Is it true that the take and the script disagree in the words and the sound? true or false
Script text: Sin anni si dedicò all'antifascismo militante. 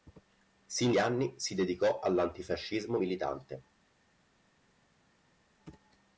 false